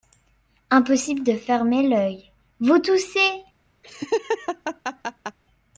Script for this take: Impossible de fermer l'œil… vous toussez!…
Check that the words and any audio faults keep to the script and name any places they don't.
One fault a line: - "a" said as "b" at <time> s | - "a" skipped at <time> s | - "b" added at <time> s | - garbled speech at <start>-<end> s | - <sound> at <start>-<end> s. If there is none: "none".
- laugh at 3.8-5.4 s